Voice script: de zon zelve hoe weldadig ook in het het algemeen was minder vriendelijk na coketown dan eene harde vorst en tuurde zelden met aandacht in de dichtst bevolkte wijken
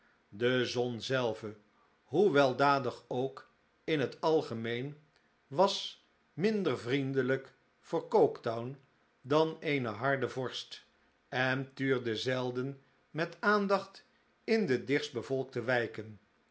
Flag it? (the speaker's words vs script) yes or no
yes